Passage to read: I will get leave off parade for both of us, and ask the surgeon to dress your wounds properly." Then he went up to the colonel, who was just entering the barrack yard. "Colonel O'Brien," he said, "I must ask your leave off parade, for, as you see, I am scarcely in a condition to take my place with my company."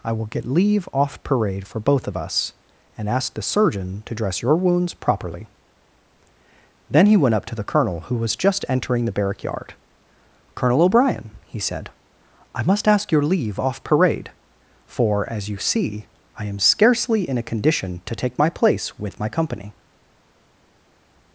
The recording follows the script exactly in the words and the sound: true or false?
true